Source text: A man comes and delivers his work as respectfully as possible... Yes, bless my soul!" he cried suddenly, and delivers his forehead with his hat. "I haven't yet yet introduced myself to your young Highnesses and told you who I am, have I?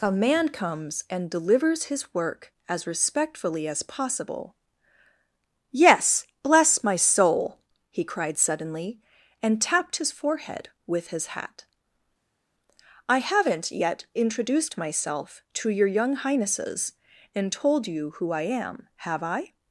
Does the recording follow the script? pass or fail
fail